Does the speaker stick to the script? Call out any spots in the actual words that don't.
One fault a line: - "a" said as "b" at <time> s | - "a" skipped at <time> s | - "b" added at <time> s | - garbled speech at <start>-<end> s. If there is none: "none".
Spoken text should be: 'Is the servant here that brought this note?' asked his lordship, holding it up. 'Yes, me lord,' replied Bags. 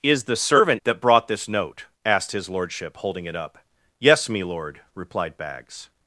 - "here" skipped at 0.8 s